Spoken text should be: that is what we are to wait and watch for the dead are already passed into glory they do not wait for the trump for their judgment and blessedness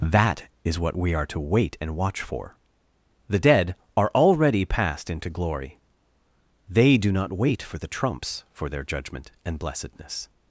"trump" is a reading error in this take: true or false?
true